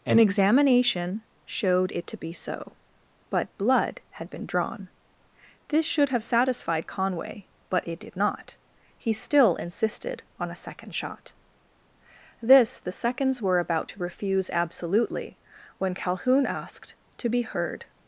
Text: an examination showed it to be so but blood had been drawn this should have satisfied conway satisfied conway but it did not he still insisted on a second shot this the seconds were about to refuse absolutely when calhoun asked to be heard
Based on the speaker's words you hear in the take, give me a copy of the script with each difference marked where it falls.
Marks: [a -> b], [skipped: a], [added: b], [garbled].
an examination showed it to be so but blood had been drawn this should have satisfied conway [skipped: satisfied conway] but it did not he still insisted on a second shot this the seconds were about to refuse absolutely when calhoun asked to be heard